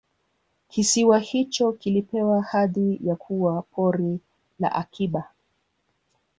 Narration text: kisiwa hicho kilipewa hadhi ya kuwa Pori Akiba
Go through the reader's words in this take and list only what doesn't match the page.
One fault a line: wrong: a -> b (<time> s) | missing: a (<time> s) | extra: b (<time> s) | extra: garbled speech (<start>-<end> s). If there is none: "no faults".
extra: la (4.6 s)